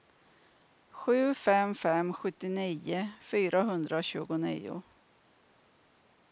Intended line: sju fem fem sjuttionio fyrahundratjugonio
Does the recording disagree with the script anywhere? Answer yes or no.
no